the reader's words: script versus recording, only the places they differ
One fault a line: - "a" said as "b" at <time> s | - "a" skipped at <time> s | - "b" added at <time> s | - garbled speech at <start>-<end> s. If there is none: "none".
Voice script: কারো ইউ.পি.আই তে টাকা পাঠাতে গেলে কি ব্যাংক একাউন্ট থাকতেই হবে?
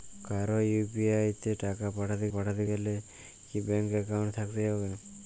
- "পাঠাতে" added at 2.3 s